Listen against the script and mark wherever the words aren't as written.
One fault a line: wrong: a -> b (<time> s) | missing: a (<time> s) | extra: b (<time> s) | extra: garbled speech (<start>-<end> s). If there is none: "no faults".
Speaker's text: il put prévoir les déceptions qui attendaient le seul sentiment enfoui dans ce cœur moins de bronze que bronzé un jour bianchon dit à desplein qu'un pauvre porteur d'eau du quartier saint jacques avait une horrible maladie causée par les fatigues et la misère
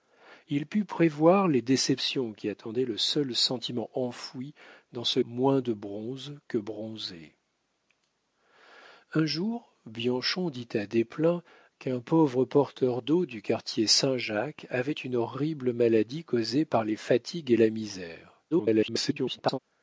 missing: cœur (5.2 s)
extra: garbled speech (18.5-19.6 s)